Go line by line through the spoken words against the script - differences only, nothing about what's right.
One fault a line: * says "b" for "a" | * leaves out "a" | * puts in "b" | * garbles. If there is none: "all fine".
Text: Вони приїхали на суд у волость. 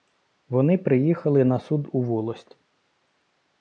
all fine